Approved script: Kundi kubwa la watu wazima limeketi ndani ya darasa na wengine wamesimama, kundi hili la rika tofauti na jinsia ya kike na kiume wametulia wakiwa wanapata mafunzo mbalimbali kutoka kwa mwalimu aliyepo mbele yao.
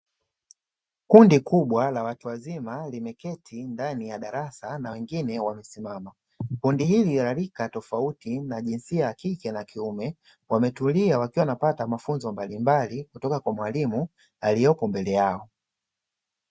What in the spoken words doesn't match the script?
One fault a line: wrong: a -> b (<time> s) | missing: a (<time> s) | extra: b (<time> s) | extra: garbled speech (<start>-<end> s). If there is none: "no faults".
no faults